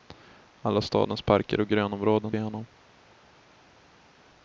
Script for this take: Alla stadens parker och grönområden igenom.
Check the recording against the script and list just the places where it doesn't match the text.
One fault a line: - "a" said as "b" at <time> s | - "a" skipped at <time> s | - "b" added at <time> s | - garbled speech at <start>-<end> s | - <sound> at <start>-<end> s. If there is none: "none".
none